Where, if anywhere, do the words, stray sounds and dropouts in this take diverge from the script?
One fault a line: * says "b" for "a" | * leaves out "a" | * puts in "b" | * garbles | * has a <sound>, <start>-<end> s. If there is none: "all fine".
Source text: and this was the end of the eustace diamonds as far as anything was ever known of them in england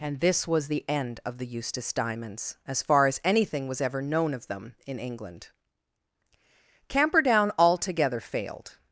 * puts in "camperdown altogether failed"